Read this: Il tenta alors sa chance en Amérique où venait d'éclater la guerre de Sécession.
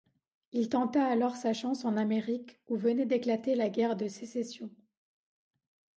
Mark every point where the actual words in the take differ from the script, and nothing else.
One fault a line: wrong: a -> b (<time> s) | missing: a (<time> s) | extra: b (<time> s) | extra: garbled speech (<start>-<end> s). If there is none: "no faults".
no faults